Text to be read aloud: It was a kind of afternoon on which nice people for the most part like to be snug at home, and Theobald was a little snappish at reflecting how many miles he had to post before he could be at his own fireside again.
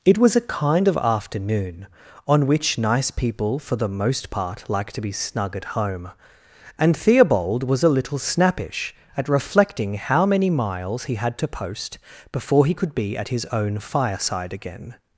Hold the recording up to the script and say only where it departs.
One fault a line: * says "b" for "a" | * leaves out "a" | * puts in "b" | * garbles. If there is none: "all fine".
all fine